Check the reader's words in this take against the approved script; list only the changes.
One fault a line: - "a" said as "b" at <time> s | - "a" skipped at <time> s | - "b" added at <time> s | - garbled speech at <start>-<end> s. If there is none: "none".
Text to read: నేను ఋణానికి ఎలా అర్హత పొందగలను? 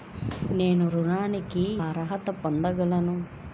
- "ఎలా" skipped at 1.6 s